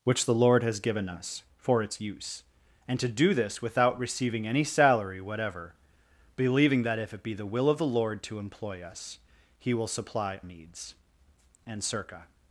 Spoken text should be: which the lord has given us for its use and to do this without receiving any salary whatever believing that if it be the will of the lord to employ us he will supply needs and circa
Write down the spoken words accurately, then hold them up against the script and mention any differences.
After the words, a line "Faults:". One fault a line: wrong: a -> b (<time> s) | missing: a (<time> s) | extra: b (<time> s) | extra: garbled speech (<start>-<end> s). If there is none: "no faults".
which the lord has given us for its use and to do this without receiving any salary whatever believing that if it be the will of the lord to employ us he will supply needs and circa
Faults:
no faults